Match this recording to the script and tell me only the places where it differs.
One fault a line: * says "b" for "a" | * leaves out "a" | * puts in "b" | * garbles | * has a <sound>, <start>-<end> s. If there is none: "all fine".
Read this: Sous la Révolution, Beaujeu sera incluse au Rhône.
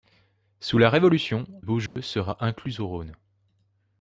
* has a dropout, 1.9-2.0 s